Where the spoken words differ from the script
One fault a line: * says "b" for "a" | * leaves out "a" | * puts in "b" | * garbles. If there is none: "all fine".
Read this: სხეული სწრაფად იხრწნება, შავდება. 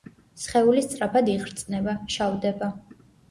all fine